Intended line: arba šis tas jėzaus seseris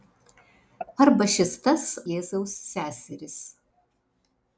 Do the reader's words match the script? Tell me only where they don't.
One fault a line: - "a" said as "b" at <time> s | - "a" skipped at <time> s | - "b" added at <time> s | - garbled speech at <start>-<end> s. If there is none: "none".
none